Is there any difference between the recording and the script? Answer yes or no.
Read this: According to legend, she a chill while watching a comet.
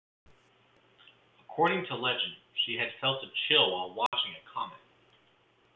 yes